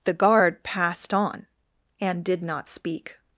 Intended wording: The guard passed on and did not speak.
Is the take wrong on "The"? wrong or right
right